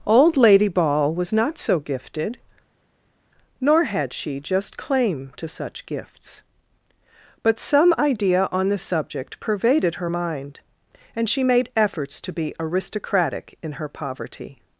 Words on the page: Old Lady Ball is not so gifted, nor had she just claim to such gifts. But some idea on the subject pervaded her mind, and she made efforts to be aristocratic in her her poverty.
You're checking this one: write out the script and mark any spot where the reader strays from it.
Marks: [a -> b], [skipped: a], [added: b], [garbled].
Old Lady Ball [is -> was] not so gifted, nor had she just claim to such gifts. But some idea on the subject pervaded her mind, and she made efforts to be aristocratic in her [skipped: her] poverty.